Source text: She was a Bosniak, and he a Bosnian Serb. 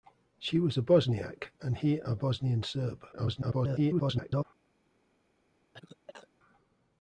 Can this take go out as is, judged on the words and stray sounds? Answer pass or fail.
fail